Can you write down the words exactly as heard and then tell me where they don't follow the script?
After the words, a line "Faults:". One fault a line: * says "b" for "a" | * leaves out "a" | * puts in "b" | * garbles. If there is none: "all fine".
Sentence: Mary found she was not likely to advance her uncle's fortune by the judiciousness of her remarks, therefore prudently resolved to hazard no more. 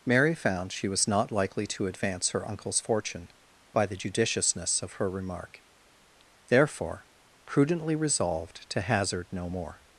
Mary found she was not likely to advance her uncle's fortune by the judiciousness of her remark, therefore prudently resolved to hazard no more.
Faults:
* says "remark" for "remarks"